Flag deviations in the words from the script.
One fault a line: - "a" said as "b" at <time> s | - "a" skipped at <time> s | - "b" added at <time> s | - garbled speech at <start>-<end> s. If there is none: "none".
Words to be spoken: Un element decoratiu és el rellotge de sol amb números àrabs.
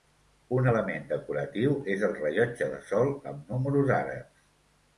none